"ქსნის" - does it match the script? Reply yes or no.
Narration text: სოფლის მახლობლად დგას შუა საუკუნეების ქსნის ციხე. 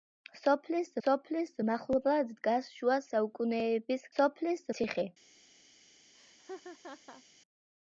no